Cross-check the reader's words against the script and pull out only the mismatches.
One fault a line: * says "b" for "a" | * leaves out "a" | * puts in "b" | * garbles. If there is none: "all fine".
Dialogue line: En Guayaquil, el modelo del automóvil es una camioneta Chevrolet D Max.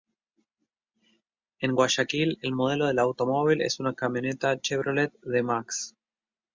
all fine